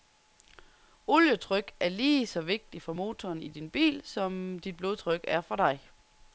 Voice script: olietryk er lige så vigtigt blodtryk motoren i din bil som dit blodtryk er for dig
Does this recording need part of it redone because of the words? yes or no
yes